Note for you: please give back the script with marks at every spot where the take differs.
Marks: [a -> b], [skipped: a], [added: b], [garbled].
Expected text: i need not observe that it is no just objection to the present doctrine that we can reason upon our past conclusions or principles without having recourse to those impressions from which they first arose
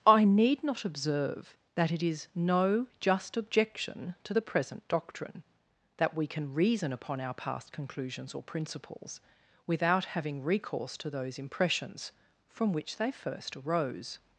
i need not observe that it is no just objection to the present doctrine that we can reason upon our past conclusions or principles without having recourse to those impressions from which they first arose